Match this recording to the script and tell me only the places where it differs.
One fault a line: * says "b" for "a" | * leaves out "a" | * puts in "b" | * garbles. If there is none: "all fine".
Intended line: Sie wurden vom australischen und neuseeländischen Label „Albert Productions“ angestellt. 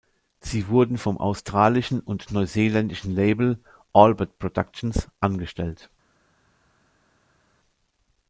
all fine